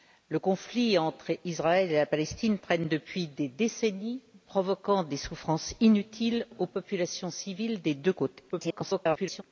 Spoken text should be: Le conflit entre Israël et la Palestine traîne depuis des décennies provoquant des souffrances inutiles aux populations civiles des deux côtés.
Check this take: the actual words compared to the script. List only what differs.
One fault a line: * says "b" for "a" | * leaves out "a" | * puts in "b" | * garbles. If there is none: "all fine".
* garbles